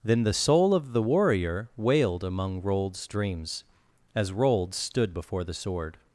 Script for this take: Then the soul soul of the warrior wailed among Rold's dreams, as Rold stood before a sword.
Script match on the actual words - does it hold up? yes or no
no